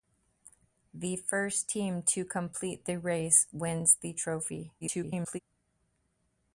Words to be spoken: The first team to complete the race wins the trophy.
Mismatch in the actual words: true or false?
true